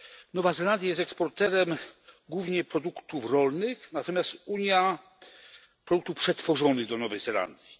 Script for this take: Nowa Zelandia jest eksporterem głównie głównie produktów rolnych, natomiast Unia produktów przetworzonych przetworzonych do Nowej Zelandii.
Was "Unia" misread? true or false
false